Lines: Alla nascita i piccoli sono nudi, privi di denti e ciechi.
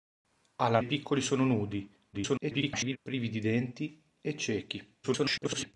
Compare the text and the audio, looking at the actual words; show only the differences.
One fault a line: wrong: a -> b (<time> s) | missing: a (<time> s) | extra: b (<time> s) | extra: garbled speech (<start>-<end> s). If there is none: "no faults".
missing: nascita (0.8 s)
extra: garbled speech (2.1-3.0 s)
extra: garbled speech (5.0-5.7 s)